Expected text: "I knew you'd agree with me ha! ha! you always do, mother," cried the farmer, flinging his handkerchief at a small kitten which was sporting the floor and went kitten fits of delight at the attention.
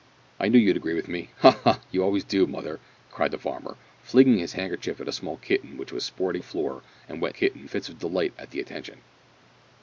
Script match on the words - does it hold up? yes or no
yes